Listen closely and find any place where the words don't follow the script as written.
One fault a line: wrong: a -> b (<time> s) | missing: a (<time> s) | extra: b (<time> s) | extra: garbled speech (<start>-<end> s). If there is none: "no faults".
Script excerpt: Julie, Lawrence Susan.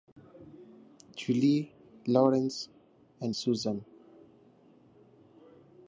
extra: and (3.2 s)